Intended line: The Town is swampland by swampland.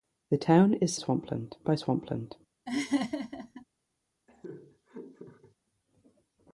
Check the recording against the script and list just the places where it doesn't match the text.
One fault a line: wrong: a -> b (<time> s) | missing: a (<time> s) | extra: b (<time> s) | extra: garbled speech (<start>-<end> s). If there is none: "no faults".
no faults